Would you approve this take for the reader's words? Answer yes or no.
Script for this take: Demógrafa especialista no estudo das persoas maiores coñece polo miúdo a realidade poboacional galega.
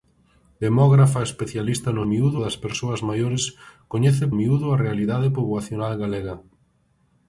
no